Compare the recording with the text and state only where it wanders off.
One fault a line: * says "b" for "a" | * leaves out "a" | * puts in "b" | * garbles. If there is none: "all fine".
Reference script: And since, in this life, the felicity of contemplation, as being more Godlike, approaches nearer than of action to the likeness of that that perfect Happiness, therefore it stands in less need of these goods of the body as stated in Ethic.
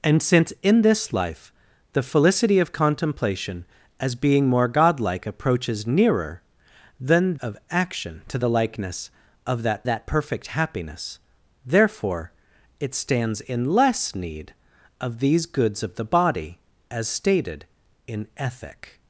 all fine